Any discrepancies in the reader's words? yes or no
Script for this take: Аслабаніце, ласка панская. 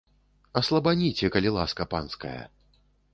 yes